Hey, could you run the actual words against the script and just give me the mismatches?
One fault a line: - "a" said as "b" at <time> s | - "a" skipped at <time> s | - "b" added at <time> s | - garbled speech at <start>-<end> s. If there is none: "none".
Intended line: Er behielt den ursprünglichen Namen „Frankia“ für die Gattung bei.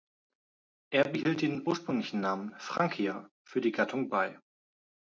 none